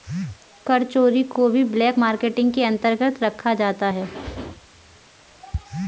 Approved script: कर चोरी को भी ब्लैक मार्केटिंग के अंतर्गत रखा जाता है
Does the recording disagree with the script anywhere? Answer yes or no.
no